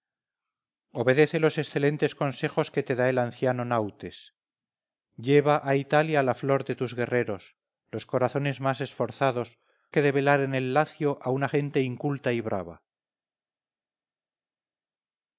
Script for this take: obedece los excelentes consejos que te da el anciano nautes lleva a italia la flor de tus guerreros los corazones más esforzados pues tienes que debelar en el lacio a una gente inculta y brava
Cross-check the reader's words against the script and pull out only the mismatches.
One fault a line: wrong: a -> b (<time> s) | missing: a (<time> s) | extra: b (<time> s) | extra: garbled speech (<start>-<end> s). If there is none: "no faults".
missing: pues tienes (9.6 s)